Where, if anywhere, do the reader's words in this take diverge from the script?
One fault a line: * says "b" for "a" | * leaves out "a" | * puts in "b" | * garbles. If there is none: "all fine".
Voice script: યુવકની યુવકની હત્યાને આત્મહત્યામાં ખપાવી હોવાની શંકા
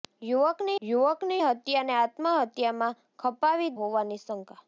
all fine